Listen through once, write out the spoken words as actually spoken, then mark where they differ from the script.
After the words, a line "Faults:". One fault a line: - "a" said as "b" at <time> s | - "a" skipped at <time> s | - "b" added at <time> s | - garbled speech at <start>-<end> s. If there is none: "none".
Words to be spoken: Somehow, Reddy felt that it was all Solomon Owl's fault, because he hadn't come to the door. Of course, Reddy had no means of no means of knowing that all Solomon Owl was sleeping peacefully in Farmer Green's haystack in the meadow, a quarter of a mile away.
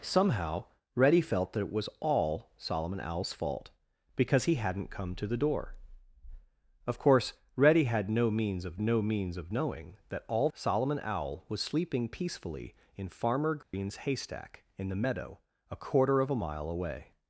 Somehow, Reddy felt that it was all Solomon Owl's fault, because he hadn't come to the door. Of course, Reddy had no means of no means of knowing that all Solomon Owl was sleeping peacefully in Farmer Green's haystack in the meadow, a quarter of a mile away.
Faults:
none